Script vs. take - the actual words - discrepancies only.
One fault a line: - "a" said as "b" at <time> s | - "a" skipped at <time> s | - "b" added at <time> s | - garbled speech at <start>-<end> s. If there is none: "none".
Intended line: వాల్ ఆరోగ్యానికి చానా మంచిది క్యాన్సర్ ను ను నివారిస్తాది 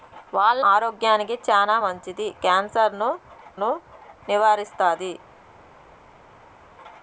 none